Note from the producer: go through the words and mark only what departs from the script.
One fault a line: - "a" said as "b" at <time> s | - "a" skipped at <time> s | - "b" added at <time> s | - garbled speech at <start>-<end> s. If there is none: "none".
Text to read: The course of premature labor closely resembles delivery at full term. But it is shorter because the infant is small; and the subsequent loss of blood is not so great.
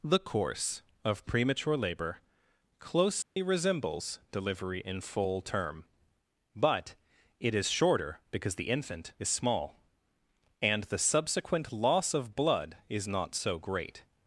- "at" said as "in" at 4.8 s